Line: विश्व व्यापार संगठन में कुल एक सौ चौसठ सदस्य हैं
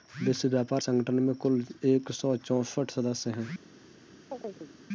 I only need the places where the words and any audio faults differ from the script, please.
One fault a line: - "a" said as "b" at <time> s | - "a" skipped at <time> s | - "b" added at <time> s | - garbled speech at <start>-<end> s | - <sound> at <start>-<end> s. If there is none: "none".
- chirp at 4.3-4.7 s